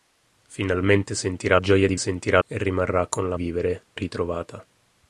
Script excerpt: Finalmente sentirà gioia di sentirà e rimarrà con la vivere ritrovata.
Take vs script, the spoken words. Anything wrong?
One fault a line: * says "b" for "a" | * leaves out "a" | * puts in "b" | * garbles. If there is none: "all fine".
all fine